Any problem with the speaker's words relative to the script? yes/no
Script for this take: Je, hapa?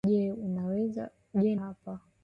no